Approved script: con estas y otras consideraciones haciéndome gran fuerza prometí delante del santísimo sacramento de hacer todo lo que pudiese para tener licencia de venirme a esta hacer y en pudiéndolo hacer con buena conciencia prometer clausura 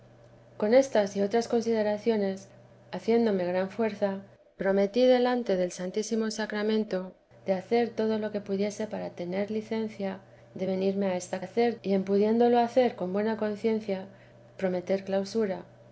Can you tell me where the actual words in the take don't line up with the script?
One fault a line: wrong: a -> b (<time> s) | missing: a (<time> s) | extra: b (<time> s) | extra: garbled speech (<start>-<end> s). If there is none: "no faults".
no faults